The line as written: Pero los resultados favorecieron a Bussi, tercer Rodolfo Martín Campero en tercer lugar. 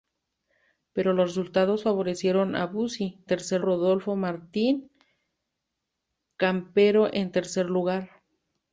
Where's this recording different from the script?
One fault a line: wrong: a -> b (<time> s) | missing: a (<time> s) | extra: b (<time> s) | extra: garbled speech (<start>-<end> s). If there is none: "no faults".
no faults